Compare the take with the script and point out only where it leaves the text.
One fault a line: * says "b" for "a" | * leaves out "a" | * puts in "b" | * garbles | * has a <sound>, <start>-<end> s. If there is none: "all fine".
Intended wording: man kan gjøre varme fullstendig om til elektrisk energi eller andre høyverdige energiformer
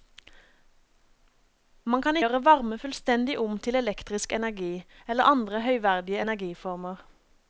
all fine